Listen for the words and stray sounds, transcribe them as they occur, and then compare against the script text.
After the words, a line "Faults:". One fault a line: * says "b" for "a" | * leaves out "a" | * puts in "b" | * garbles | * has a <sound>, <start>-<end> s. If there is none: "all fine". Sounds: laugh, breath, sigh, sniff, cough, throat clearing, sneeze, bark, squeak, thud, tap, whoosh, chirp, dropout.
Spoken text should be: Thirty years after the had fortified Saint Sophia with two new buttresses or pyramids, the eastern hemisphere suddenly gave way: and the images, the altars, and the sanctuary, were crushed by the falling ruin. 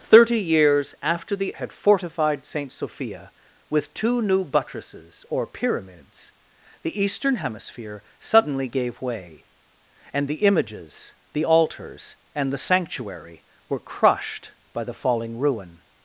Thirty years after the had fortified Saint Sophia with two new buttresses or pyramids, the eastern hemisphere suddenly gave way: and the images, the altars, and the sanctuary, were crushed by the falling ruin.
Faults:
all fine